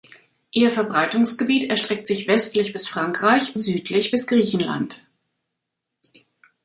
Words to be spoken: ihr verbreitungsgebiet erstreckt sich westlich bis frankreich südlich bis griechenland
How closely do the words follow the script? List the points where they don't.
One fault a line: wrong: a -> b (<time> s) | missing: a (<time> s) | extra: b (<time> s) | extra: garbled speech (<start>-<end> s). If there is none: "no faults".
no faults